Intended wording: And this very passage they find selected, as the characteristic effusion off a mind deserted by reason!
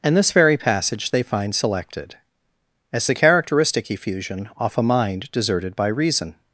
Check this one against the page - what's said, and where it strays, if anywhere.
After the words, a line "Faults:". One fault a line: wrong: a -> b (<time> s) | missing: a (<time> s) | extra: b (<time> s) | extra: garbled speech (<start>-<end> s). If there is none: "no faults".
And this very passage they find selected, as the characteristic effusion off a mind deserted by reason!
Faults:
no faults